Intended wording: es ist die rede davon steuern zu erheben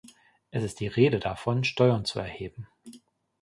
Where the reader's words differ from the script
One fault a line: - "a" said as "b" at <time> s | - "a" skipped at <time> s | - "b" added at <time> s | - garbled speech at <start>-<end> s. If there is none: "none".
none